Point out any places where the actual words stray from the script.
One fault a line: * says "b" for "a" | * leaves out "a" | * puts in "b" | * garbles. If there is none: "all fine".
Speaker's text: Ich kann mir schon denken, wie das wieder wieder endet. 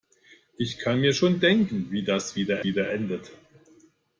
all fine